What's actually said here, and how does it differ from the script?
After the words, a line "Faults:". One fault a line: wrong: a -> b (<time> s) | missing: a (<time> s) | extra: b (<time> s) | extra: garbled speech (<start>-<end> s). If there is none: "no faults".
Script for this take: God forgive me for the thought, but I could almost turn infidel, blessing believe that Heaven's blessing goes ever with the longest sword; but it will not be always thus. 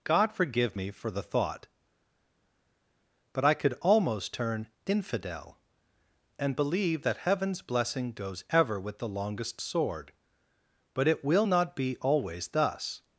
God forgive me for the thought, but I could almost turn infidel, and believe that Heaven's blessing goes ever with the longest sword; but it will not be always thus.
Faults:
wrong: blessing -> and (6.4 s)